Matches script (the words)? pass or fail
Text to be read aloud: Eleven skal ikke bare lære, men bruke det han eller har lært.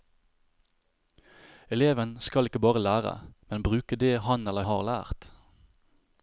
pass